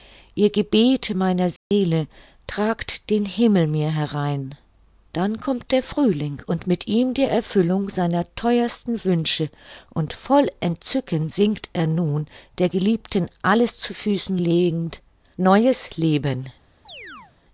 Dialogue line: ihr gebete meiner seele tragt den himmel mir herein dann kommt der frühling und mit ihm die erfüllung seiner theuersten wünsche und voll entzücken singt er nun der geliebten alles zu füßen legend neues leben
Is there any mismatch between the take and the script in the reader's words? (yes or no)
no